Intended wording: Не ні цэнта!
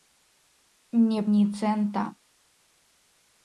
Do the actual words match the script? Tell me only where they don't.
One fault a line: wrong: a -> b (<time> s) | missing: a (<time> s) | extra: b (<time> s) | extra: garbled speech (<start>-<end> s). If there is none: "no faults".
no faults